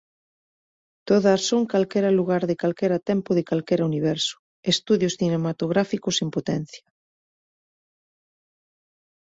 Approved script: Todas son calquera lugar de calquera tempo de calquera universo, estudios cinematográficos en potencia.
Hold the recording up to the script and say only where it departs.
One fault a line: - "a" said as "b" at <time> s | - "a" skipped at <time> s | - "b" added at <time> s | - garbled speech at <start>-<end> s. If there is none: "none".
none